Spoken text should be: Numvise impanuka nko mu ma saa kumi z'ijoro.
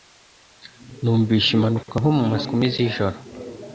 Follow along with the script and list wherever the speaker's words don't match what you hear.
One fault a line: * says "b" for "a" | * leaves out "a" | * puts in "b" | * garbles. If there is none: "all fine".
* leaves out "saa"